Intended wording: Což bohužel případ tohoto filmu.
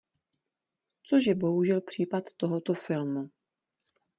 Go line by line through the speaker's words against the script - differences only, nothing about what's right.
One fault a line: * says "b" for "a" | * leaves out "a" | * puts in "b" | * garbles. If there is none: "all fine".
* puts in "je"